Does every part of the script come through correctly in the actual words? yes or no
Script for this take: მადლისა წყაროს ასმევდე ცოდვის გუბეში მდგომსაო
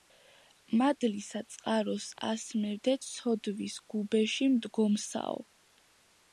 yes